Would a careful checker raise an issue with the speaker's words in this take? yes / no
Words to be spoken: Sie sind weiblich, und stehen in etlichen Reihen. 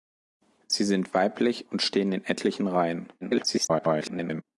yes